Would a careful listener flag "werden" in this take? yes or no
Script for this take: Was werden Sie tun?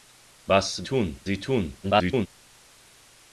yes